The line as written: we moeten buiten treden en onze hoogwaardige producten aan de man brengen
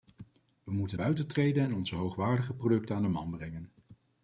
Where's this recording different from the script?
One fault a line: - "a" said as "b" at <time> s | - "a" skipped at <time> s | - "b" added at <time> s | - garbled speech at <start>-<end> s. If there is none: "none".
none